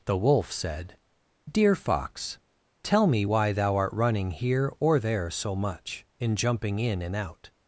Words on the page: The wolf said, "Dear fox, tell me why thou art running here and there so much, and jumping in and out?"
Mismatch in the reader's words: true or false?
true